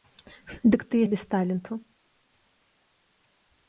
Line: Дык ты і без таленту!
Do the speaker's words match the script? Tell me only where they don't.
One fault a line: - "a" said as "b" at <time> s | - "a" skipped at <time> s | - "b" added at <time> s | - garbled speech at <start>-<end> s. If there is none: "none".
none